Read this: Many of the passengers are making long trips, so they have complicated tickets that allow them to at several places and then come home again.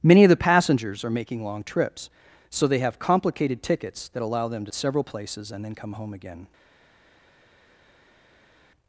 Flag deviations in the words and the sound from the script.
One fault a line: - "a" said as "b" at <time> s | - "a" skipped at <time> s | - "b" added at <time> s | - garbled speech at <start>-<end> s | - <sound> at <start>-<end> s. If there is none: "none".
none